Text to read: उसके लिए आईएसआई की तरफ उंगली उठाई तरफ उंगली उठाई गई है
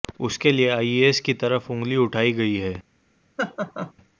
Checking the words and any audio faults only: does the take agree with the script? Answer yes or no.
no